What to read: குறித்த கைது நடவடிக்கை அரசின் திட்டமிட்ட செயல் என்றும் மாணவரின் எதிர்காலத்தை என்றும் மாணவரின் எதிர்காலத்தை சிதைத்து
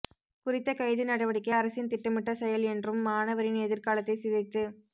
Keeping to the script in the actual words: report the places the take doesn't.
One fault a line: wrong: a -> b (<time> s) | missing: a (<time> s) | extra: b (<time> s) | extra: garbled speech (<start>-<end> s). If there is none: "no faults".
missing: என்றும் மாணவரின் எதிர்காலத்தை (4.2 s)